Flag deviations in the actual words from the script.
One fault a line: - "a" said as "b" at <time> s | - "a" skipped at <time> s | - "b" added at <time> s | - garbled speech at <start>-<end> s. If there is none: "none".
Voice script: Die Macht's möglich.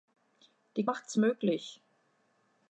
none